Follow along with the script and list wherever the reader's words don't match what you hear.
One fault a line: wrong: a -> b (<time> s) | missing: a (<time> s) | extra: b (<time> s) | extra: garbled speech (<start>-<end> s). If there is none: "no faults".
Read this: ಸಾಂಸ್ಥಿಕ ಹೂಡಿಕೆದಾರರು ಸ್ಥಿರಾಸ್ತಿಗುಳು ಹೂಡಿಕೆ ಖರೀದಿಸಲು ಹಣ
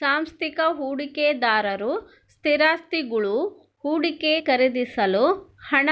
no faults